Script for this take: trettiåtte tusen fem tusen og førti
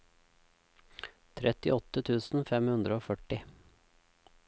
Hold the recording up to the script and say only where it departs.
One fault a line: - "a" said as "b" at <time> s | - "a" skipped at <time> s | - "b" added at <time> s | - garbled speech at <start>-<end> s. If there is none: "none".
- "tusen" said as "hundre" at 2.8 s